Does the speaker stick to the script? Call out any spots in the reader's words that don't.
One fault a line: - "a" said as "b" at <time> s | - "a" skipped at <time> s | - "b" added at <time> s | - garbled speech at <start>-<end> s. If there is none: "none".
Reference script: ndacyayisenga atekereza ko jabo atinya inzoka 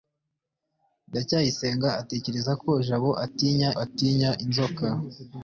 - "atinya" added at 3.8 s